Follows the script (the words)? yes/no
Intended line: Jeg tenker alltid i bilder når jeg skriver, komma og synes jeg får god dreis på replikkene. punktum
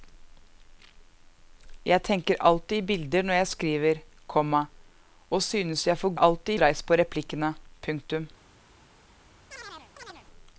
no